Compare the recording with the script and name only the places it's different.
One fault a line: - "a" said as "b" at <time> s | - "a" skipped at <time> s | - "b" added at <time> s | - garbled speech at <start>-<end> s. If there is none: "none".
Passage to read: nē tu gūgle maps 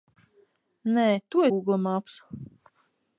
none